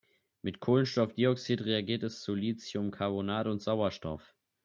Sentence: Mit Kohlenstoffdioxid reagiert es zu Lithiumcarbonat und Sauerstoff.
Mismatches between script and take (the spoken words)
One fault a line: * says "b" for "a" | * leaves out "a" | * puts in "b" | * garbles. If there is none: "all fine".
all fine